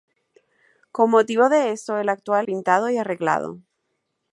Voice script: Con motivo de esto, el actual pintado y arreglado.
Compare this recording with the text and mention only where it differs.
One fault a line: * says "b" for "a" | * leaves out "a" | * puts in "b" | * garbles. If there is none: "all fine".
all fine